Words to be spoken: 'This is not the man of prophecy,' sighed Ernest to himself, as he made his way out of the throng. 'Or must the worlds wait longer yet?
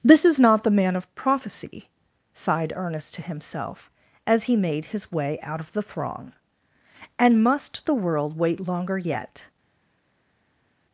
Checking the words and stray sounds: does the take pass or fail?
fail